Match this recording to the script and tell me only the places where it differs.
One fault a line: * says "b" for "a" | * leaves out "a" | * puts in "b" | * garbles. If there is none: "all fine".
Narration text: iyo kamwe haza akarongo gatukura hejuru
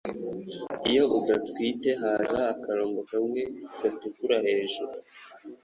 * says "udatwite" for "kamwe"
* puts in "kamwe"